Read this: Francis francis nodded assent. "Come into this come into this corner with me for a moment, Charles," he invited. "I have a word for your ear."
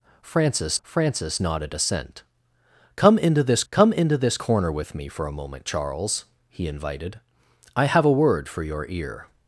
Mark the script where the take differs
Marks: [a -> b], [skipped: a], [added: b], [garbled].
Francis francis nodded assent. "Come into this come into this corner with me for a moment, Charles," he invited. "I have a word for your ear."